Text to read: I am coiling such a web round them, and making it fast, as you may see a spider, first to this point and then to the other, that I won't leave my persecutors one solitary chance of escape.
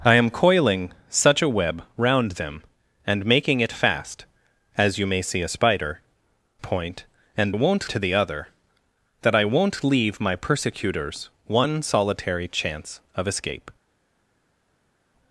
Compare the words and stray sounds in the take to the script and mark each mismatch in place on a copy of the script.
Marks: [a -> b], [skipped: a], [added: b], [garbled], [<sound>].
I am coiling such a web round them, and making it fast, as you may see a spider, [skipped: first to this] point and [then -> won't] to the other, that I won't leave my persecutors one solitary chance of escape.